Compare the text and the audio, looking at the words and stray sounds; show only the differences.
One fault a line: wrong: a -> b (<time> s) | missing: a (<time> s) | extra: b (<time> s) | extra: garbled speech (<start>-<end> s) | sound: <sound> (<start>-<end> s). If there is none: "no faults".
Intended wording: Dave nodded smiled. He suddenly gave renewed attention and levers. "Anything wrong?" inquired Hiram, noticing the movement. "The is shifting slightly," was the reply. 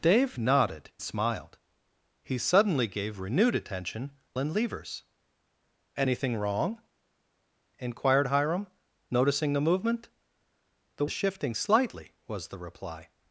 no faults